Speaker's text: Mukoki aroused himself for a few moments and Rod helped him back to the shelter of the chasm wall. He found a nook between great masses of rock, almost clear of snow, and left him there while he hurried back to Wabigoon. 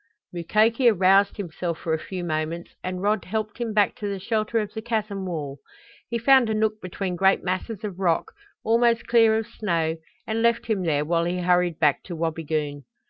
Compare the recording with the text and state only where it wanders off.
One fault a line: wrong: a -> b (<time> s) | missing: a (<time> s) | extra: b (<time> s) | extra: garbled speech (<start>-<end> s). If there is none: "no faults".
no faults